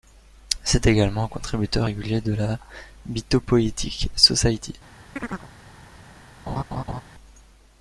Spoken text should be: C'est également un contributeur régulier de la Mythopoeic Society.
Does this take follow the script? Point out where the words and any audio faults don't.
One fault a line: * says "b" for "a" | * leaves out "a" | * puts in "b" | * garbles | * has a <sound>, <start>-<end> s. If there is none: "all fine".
* has a chirp, 5.2-5.5 s
* has a laugh, 6.5-7.0 s